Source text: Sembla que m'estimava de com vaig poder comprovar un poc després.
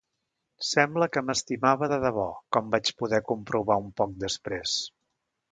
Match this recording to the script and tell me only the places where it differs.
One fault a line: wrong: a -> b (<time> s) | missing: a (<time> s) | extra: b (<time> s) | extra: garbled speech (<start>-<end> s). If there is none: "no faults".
extra: debò (2.0 s)